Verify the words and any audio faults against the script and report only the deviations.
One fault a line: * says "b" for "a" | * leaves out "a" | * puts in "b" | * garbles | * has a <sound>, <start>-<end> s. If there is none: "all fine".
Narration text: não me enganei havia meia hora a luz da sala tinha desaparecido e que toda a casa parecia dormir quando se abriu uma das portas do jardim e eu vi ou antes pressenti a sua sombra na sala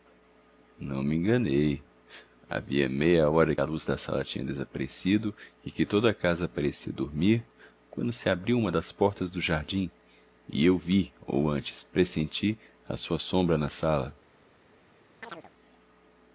* has a chirp, 15.2-15.5 s